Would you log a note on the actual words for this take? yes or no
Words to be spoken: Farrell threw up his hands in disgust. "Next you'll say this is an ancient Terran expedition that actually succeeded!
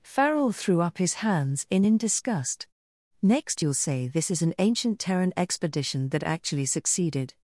yes